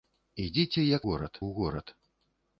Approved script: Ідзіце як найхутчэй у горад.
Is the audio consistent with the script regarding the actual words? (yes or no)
no